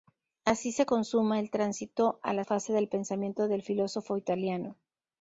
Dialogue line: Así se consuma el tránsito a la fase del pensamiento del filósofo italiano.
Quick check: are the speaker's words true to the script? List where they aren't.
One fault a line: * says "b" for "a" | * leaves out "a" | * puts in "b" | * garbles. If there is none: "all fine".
all fine